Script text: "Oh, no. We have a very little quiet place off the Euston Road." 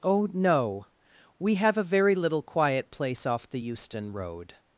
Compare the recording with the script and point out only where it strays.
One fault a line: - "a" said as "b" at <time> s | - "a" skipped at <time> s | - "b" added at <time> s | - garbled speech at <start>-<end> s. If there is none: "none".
none